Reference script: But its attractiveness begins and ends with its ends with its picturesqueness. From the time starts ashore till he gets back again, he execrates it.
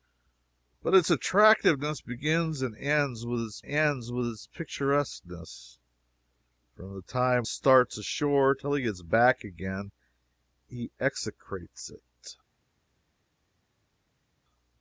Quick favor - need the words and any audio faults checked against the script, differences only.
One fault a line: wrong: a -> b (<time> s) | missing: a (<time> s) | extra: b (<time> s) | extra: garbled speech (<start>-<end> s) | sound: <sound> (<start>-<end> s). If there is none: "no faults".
no faults